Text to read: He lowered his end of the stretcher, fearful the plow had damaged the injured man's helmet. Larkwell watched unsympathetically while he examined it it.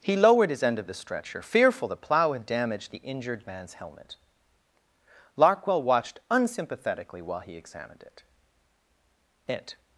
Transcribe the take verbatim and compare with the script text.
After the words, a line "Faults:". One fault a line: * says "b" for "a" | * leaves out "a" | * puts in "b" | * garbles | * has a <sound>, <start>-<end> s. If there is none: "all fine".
He lowered his end of the stretcher, fearful the plow had damaged the injured man's helmet. Larkwell watched unsympathetically while he examined it it.
Faults:
all fine